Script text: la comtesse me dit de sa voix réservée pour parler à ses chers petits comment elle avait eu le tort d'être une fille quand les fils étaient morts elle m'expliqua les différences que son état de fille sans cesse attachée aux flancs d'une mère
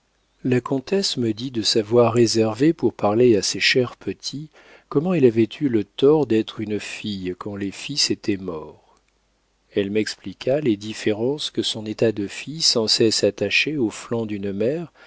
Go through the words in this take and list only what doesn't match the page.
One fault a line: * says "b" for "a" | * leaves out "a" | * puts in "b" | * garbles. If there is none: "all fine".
all fine